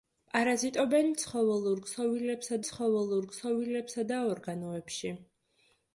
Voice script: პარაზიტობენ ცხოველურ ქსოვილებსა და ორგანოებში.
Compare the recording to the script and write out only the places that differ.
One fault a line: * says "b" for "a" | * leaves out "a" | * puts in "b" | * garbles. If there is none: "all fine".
* puts in "ცხოველურ ქსოვილებსა"